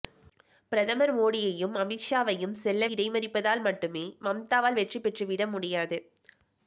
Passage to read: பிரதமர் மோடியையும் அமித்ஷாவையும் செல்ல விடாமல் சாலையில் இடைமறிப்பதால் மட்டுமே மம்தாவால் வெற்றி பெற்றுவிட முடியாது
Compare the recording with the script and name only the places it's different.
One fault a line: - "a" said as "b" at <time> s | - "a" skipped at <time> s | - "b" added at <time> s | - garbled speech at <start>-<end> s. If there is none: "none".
- "விடாமல் சாலையில்" skipped at 2.9 s